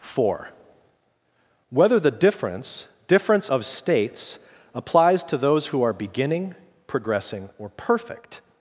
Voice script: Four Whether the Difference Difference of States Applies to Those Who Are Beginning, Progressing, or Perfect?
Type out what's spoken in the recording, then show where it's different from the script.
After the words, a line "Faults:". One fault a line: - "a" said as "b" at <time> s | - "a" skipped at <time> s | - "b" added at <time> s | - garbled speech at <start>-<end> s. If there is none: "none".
Four Whether the Difference Difference of States Applies to Those Who Are Beginning, Progressing, or Perfect?
Faults:
none